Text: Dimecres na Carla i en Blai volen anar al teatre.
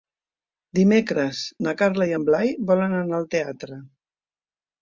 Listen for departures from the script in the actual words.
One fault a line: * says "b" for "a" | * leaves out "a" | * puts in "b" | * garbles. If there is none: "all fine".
all fine